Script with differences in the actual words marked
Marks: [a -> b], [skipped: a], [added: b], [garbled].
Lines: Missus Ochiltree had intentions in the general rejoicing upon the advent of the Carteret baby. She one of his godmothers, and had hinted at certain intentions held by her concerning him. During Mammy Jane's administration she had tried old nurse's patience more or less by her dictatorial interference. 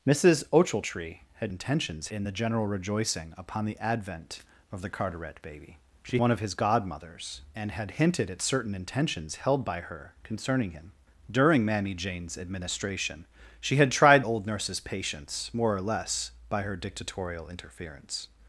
Missus Ochiltree had intentions in the general rejoicing upon the advent of the Carteret baby. She one of his godmothers, and had hinted at certain intentions held by her concerning him. During Mammy Jane's administration she had tried old nurse's patience more or less by her dictatorial interference.